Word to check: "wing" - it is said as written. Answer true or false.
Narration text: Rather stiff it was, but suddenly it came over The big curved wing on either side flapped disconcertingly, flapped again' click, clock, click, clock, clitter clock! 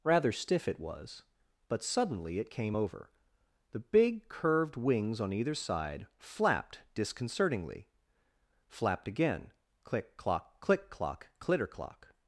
false